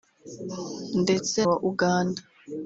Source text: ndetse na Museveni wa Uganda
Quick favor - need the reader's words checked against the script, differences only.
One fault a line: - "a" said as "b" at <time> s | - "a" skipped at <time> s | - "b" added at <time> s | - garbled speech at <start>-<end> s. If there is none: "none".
- "na Museveni" skipped at 1.4 s